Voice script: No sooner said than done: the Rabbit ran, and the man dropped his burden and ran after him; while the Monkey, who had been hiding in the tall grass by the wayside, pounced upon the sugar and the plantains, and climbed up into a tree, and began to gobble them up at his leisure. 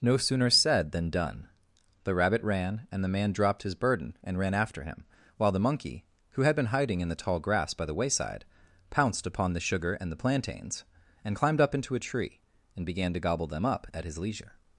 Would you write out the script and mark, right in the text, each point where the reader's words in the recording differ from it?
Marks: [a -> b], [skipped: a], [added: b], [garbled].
No sooner said than done: the Rabbit ran, and the man dropped his burden and ran after him; while the Monkey, who had been hiding in the tall grass by the wayside, pounced upon the sugar and the plantains, and climbed up into a tree, and began to gobble them up at his leisure.